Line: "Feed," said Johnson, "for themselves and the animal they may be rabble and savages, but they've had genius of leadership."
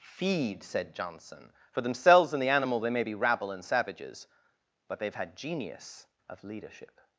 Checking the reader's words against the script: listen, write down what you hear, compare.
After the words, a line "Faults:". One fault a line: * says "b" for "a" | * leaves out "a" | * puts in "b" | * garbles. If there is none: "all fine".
"Feed," said Johnson, "for themselves and the animal they may be rabble and savages, but they've had genius of leadership."
Faults:
all fine